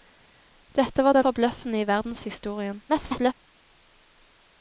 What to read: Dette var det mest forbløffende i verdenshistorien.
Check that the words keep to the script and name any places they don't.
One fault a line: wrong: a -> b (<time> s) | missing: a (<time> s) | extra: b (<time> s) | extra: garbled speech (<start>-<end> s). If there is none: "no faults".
missing: mest (1.3 s)
extra: garbled speech (2.9-3.3 s)